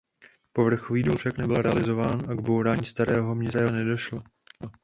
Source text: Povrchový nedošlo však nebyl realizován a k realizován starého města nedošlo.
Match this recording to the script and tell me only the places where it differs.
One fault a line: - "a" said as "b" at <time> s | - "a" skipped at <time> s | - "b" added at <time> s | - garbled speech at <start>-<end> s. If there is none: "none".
- "nedošlo" said as "důl" at 1.0 s
- "realizován" said as "bourání" at 2.4 s